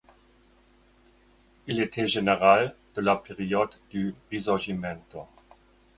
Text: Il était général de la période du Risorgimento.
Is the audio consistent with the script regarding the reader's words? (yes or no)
yes